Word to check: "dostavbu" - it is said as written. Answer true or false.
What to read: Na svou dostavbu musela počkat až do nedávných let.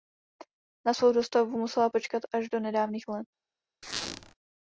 true